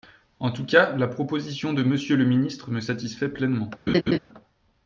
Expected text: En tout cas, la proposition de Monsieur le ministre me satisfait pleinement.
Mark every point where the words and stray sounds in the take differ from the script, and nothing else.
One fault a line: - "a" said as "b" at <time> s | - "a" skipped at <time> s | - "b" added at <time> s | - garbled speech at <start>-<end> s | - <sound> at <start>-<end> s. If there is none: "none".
- laugh at 3.9-4.2 s